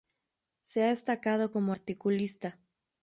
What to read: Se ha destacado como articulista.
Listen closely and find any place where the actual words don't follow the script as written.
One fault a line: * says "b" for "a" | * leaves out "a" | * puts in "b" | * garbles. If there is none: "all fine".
all fine